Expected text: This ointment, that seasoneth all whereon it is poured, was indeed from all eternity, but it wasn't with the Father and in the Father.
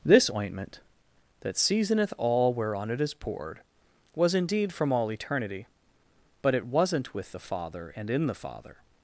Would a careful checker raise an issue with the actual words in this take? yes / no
no